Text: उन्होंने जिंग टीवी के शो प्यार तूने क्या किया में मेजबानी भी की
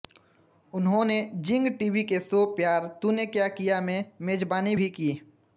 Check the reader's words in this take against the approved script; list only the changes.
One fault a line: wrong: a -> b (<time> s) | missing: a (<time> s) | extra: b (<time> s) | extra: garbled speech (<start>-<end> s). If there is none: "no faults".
no faults